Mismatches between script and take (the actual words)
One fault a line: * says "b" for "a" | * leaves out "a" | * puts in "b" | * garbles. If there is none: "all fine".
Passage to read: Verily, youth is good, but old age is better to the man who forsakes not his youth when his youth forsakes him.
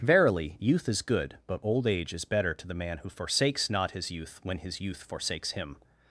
all fine